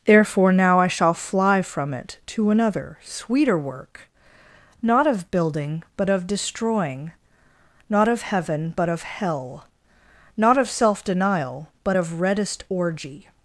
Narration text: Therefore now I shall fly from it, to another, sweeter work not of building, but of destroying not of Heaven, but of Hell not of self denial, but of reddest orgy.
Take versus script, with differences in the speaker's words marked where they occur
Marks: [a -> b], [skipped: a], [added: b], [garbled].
Therefore now I shall fly from it, to another, sweeter work not of building, but of destroying not of Heaven, but of Hell not of self denial, but of reddest orgy.